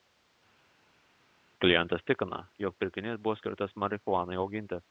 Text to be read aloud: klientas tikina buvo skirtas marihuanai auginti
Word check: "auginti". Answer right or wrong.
right